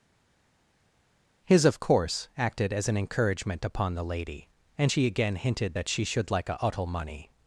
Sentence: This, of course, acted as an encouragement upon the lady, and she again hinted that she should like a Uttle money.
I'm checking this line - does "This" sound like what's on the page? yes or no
no